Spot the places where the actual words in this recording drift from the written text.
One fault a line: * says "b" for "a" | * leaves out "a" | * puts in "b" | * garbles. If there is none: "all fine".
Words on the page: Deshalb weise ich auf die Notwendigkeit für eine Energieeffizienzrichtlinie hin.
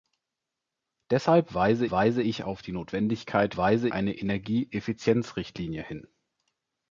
* puts in "weise"
* says "weise" for "für"